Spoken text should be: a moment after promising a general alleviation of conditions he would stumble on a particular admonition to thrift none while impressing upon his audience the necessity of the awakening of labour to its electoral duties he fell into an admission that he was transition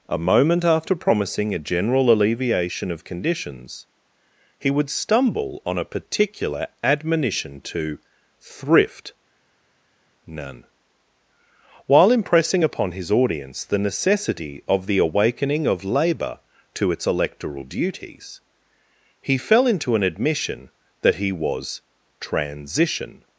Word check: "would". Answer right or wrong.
right